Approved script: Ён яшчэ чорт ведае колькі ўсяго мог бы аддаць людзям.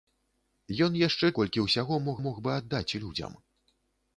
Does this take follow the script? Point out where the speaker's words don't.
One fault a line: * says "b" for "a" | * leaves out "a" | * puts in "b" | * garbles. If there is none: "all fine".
* leaves out "чорт ведае"
* puts in "мог"